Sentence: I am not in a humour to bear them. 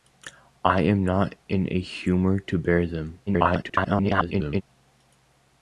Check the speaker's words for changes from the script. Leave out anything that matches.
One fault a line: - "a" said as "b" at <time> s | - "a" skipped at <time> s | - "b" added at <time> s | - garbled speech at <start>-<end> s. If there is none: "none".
- garbled speech at 3.3-4.6 s